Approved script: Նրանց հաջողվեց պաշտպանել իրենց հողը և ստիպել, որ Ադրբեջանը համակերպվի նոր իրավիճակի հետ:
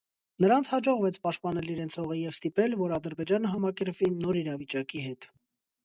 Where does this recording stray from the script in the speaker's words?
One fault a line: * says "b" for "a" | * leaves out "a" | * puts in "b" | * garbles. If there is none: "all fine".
all fine